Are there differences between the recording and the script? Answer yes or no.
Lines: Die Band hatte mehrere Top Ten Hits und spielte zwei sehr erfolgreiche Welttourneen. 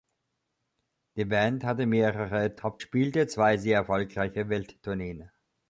yes